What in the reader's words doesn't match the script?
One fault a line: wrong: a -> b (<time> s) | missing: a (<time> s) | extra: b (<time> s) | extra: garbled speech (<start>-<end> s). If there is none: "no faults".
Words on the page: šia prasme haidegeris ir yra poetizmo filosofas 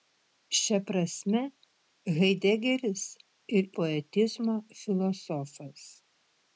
missing: yra (3.7 s)